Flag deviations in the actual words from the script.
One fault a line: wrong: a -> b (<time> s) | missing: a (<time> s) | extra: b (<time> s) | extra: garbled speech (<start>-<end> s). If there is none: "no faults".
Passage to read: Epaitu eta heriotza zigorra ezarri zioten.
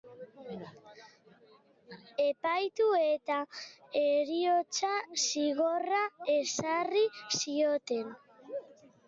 no faults